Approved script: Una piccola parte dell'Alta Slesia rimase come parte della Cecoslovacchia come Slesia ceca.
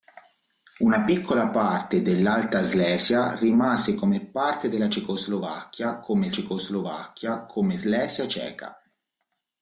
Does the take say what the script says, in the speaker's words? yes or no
no